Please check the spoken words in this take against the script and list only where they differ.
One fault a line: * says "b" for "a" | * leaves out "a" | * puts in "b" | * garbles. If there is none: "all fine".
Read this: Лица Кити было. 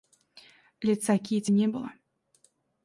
* puts in "не"